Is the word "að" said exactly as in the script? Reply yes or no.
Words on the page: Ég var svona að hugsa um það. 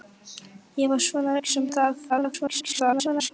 no